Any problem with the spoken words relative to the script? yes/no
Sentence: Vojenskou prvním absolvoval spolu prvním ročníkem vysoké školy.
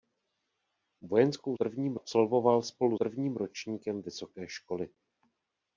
no